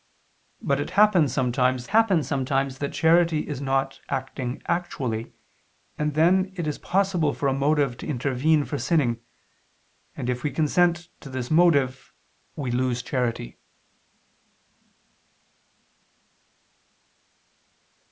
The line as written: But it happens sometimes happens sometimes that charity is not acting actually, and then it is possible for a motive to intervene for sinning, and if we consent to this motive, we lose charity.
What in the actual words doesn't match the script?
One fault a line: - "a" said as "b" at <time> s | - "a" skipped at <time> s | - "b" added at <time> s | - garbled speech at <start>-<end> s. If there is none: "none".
none